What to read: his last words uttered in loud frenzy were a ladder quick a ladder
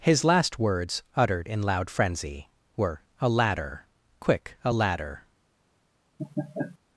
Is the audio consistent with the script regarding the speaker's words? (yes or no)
yes